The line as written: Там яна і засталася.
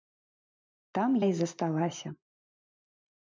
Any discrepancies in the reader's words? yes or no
yes